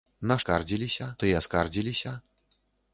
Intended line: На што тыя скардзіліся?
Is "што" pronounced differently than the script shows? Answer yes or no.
yes